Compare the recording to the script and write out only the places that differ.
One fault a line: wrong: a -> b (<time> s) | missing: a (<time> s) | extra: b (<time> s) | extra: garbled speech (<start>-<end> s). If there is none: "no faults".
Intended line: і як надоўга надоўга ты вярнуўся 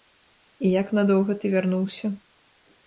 missing: надоўга (1.4 s)